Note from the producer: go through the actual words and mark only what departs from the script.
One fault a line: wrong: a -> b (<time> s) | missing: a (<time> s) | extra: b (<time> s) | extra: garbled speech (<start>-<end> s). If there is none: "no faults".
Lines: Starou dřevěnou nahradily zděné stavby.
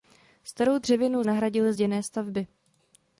no faults